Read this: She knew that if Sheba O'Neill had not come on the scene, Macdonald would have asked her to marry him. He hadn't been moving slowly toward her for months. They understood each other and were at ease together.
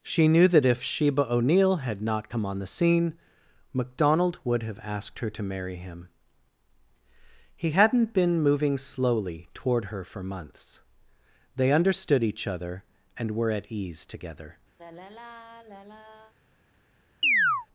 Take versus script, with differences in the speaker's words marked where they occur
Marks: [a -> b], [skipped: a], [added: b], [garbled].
She knew that if Sheba O'Neill had not come on the scene, Macdonald would have asked her to marry him. He hadn't been moving slowly toward her for months. They understood each other and were at ease together.